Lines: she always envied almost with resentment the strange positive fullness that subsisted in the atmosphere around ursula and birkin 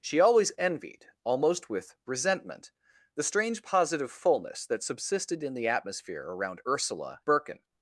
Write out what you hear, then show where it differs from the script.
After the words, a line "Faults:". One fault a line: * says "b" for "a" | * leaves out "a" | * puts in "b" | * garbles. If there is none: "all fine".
she always envied almost with resentment the strange positive fullness that subsisted in the atmosphere around ursula birkin
Faults:
* leaves out "and"